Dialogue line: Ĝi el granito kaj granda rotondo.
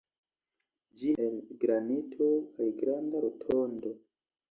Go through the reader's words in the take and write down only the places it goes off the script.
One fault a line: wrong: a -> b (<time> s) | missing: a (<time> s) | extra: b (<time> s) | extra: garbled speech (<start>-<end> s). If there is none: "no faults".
no faults